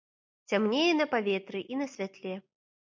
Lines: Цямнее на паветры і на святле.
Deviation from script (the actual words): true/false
false